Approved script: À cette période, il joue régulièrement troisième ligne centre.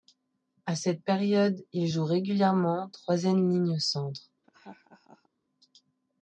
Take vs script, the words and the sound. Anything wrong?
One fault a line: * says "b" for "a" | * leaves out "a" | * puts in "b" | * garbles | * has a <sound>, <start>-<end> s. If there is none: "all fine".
* has a laugh, 4.4-5.3 s